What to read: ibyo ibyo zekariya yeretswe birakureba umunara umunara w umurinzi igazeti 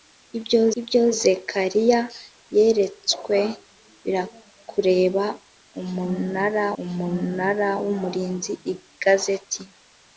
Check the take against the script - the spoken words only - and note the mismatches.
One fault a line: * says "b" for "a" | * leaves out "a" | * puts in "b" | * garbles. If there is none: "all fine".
all fine